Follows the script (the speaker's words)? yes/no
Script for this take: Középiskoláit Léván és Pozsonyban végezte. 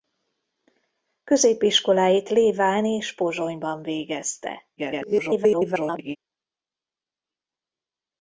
no